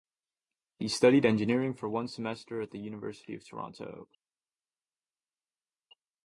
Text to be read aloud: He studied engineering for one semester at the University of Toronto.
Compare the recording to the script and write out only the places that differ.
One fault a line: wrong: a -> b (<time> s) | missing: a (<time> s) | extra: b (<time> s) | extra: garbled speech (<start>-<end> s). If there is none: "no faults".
no faults